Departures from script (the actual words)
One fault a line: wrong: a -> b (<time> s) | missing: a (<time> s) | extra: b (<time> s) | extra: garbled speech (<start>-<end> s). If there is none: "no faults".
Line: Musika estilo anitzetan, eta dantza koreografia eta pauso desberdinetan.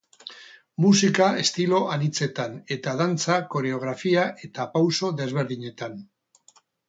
no faults